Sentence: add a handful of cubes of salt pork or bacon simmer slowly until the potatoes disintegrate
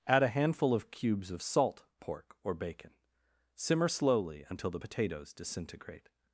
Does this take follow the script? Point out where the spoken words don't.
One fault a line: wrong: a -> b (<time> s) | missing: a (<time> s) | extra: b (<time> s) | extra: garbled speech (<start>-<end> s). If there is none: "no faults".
no faults